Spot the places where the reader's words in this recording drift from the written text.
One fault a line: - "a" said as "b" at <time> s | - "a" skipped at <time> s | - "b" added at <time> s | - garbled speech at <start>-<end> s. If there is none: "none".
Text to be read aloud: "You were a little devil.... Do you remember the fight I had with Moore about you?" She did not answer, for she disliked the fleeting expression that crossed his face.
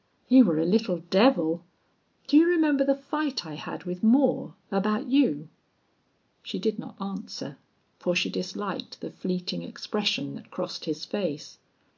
none